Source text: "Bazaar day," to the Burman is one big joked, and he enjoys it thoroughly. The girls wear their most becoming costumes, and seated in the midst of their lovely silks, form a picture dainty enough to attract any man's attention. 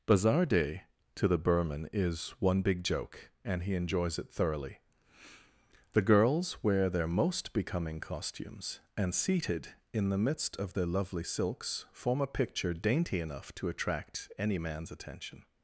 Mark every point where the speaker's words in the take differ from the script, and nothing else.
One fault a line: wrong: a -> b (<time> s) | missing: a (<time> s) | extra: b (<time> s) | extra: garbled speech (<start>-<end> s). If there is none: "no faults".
wrong: joked -> joke (2.8 s)